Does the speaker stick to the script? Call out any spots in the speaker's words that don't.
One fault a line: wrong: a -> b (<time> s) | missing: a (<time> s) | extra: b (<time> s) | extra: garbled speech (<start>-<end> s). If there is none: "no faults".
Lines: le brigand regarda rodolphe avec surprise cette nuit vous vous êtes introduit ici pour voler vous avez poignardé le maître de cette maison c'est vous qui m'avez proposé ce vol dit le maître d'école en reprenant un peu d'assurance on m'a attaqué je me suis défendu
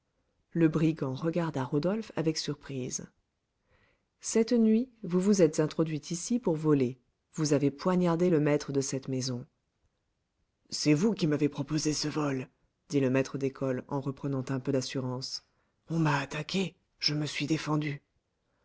no faults